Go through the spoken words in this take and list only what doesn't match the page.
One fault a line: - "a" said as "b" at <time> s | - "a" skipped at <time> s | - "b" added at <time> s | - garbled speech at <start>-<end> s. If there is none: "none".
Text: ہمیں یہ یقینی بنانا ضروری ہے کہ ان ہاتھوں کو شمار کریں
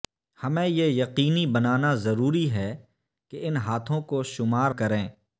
none